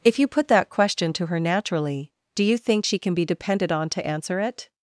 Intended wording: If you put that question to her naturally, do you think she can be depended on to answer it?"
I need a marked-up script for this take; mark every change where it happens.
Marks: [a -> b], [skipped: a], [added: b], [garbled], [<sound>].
If you put that question to her naturally, do you think she can be depended on to answer it?"